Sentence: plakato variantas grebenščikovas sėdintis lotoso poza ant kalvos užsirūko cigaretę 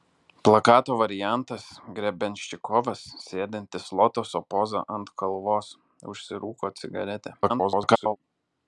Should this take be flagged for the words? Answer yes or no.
yes